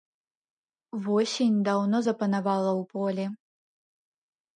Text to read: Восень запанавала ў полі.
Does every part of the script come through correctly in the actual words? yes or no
no